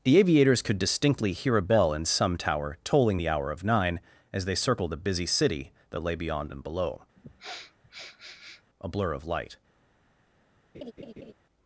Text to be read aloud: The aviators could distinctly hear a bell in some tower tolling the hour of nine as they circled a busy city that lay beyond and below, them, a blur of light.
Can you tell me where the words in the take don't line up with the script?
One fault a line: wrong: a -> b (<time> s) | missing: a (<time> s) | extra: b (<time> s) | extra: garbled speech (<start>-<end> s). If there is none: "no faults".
missing: them (7.0 s)